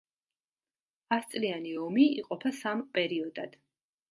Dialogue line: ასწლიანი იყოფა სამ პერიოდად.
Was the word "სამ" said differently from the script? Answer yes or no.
no